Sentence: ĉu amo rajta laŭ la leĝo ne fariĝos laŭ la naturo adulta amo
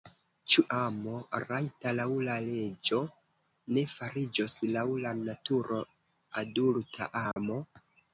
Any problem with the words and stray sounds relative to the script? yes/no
yes